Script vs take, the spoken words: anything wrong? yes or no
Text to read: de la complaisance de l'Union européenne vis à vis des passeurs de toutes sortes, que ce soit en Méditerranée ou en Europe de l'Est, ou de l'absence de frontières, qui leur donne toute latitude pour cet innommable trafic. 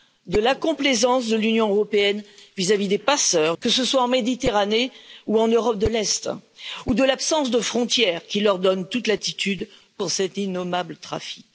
yes